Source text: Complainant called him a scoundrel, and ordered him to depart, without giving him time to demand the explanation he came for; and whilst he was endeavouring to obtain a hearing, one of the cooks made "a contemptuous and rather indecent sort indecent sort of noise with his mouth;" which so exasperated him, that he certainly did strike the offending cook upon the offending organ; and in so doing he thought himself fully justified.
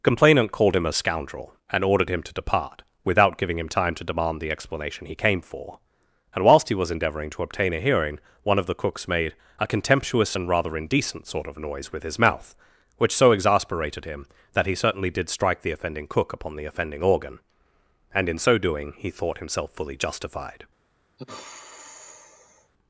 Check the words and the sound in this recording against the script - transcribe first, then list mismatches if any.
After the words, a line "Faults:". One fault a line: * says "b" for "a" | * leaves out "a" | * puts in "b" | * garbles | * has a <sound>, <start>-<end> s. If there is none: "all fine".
Complainant called him a scoundrel, and ordered him to depart, without giving him time to demand the explanation he came for; and whilst he was endeavouring to obtain a hearing, one of the cooks made "a contemptuous and rather indecent sort of noise with his mouth;" which so exasperated him, that he certainly did strike the offending cook upon the offending organ; and in so doing he thought himself fully justified.
Faults:
* leaves out "indecent sort"
* has a sigh, 21.2-22.7 s